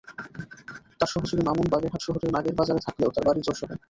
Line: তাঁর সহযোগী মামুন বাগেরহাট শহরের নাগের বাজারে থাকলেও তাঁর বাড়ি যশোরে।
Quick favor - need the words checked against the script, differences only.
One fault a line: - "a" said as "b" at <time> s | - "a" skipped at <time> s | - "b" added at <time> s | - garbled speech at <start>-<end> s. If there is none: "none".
none